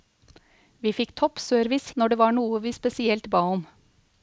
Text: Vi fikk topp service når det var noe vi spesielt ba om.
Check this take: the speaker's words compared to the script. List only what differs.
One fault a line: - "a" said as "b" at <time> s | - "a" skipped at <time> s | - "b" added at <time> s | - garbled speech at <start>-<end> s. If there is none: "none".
none